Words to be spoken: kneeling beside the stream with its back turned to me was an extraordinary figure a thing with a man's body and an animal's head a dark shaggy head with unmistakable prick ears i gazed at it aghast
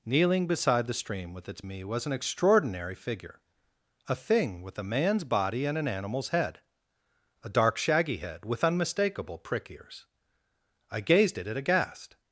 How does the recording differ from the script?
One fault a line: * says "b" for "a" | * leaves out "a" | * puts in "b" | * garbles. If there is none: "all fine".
* leaves out "back turned to"